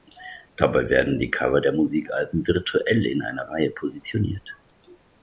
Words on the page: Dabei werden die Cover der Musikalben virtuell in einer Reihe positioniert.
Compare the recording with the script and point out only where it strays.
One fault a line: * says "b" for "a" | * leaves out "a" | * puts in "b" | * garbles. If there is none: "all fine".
all fine